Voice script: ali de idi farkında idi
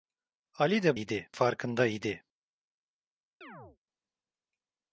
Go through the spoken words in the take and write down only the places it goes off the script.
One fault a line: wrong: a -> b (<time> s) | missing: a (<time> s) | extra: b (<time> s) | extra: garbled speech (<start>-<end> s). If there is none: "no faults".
no faults